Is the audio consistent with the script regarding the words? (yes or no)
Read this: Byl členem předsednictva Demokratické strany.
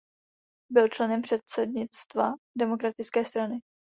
yes